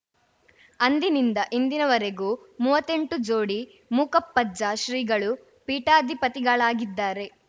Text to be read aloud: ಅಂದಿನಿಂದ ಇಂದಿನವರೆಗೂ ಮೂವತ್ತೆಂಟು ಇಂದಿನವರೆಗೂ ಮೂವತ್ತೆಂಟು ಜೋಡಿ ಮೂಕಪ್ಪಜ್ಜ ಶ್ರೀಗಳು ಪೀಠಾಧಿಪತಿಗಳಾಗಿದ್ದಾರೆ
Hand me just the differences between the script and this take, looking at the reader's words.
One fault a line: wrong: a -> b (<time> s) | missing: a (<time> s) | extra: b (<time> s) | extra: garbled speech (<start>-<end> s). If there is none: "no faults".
missing: ಇಂದಿನವರೆಗೂ ಮೂವತ್ತೆಂಟು (3.2 s)